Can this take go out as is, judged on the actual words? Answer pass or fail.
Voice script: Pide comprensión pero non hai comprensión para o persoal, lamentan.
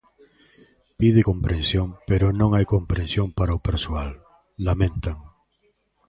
pass